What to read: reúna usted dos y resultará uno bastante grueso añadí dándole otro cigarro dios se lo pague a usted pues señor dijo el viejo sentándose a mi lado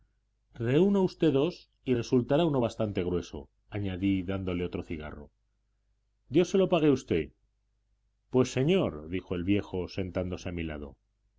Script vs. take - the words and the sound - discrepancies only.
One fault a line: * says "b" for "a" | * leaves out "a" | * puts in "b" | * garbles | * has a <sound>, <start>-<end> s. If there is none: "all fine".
all fine